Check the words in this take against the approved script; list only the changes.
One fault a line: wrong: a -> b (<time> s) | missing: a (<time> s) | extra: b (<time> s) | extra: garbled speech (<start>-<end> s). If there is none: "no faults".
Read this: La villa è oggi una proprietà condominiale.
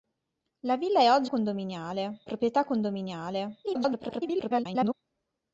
wrong: una -> condominiale (1.3 s)
extra: garbled speech (3.6-4.9 s)